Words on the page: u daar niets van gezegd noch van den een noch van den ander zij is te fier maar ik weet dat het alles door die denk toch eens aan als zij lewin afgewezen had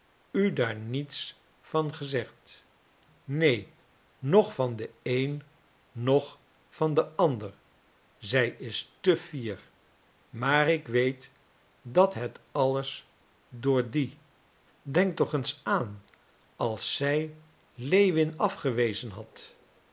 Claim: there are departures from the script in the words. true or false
true